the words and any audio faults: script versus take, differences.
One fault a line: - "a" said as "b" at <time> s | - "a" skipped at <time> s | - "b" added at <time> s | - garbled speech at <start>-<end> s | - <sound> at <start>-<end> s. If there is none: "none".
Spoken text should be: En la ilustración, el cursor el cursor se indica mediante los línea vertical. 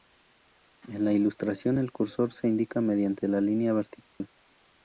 - "el cursor" skipped at 2.3 s
- "los" said as "la" at 3.3 s
- dropout at 4.1-4.2 s